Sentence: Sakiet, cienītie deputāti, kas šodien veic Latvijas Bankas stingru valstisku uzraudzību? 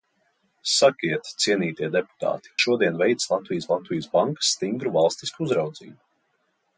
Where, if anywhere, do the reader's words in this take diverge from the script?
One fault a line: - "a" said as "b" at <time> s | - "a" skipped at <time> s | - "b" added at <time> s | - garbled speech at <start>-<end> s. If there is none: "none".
- "kas" skipped at 2.5 s
- "Latvijas" added at 3.7 s